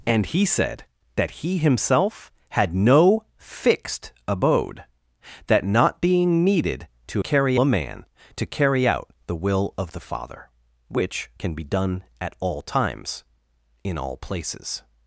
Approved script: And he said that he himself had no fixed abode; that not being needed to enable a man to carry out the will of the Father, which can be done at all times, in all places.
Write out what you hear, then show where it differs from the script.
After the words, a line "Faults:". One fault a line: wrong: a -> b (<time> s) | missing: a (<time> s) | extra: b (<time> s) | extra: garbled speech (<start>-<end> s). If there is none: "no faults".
And he said that he himself had no fixed abode; that not being needed to carry a man to carry out the will of the Father, which can be done at all times, in all places.
Faults:
wrong: enable -> carry (7.2 s)